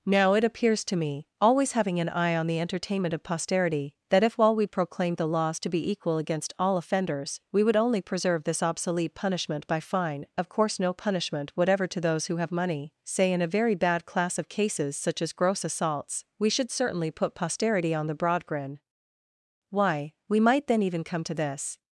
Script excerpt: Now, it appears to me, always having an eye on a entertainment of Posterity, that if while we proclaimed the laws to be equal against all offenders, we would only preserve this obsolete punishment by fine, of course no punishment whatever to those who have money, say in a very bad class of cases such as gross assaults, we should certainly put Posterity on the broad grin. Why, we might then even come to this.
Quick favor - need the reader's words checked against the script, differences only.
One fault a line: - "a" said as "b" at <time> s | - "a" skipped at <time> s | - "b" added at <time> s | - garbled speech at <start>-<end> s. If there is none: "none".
- "a" said as "the" at 2.5 s